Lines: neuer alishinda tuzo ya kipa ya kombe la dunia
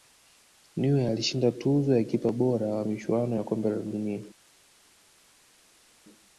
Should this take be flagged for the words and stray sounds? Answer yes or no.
yes